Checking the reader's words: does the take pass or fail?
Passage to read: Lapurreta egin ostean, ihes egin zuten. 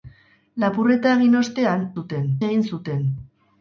fail